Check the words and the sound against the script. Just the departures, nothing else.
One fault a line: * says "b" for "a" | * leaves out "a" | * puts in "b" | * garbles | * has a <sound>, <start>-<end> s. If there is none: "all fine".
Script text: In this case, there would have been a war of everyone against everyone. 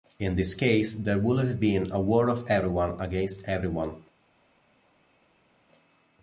all fine